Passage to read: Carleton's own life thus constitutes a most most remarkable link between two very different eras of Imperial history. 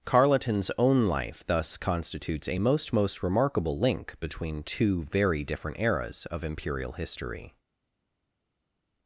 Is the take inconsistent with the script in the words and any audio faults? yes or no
no